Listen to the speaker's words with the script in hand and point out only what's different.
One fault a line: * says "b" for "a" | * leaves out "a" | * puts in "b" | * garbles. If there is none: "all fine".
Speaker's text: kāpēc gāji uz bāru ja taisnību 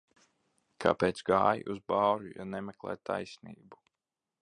* puts in "nemeklē"